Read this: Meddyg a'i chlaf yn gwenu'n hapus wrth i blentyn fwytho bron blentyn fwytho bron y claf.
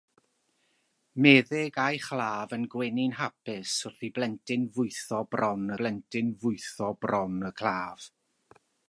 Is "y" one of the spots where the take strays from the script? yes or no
no